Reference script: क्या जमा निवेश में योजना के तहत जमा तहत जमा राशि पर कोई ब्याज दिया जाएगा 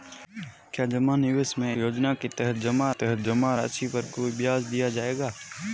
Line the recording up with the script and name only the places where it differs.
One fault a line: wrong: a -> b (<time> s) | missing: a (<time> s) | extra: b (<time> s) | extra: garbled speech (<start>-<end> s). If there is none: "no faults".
no faults